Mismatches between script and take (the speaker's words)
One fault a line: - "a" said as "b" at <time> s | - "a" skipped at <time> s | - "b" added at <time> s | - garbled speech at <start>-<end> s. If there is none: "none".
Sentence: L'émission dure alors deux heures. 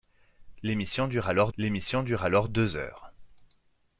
- "l'émission dure alors" added at 1.6 s